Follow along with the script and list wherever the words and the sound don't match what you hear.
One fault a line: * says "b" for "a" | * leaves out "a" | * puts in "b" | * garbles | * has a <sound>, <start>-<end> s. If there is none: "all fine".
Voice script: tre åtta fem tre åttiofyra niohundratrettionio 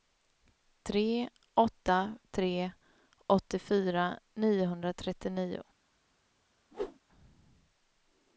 * leaves out "fem"
* has a whoosh, 6.7-7.0 s